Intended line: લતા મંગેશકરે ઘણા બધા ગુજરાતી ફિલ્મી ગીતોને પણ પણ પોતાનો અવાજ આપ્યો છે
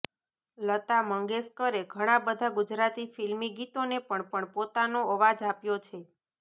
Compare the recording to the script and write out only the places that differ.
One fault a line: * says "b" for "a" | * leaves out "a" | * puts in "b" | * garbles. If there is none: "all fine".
all fine